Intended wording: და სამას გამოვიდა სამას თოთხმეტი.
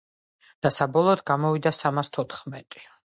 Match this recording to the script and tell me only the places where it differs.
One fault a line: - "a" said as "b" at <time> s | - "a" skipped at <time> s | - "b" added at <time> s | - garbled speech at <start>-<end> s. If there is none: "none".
- "სამას" said as "საბოლოოდ" at 0.8 s